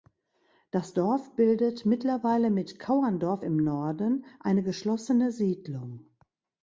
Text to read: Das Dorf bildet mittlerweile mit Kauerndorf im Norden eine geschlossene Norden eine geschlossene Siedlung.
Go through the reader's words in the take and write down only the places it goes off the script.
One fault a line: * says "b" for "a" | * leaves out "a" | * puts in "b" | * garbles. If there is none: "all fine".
* leaves out "Norden eine geschlossene"